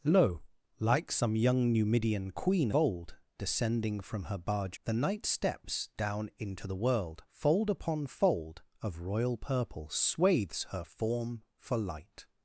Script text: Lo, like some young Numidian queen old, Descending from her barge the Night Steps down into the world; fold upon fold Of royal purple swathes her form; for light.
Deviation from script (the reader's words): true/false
false